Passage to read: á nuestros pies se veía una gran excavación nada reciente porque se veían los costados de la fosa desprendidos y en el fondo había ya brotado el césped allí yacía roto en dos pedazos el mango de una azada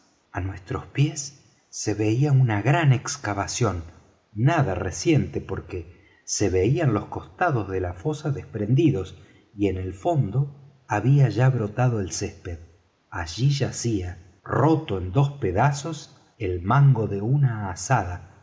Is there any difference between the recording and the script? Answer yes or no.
no